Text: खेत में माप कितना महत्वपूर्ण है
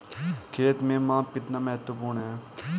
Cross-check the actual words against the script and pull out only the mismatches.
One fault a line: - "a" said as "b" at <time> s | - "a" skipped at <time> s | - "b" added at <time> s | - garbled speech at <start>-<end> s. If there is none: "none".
none